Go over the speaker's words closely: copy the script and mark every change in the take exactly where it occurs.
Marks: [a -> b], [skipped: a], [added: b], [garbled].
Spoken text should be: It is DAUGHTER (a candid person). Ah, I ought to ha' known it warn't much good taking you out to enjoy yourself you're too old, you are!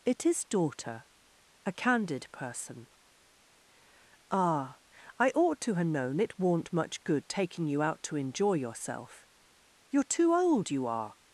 It is DAUGHTER (a candid person). Ah, I ought to ha' known it warn't much good taking you out to enjoy yourself you're too old, you are!